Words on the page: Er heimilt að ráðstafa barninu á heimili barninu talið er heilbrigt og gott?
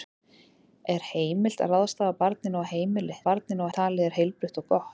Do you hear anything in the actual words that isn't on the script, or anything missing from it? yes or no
no